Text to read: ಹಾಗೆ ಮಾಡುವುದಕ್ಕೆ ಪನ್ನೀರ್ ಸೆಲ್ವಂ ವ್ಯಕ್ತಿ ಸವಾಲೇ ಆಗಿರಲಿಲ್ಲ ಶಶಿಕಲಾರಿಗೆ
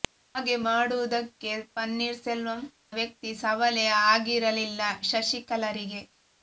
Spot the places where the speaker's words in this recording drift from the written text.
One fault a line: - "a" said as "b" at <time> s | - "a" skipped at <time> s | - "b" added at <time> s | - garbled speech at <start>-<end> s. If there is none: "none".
none